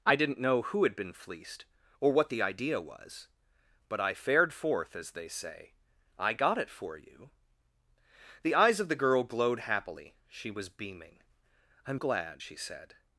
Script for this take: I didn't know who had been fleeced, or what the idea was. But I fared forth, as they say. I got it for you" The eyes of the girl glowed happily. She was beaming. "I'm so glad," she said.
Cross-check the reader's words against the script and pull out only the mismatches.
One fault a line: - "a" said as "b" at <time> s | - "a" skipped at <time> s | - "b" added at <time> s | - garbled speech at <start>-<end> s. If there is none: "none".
- "so" skipped at 12.0 s